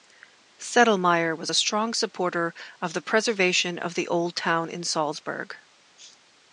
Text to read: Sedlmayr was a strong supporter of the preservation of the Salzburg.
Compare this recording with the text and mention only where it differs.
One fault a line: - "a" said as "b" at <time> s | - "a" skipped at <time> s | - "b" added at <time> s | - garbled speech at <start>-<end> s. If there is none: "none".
- "old town in" added at 4.1 s